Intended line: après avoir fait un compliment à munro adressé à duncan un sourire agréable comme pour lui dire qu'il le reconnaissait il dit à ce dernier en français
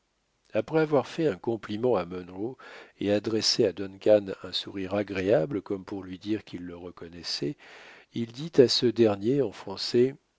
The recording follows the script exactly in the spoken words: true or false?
false